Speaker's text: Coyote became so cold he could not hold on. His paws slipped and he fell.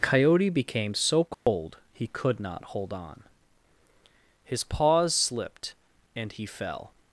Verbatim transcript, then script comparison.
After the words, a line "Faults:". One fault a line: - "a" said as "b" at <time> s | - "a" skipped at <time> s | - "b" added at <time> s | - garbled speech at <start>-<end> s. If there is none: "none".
Coyote became so cold he could not hold on. His paws slipped and he fell.
Faults:
none